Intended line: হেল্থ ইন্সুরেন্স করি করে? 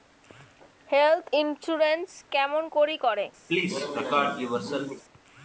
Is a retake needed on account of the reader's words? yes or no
yes